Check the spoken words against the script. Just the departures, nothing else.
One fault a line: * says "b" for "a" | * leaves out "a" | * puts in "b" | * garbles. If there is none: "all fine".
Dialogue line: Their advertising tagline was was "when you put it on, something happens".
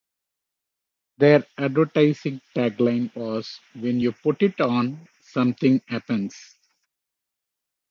* leaves out "was"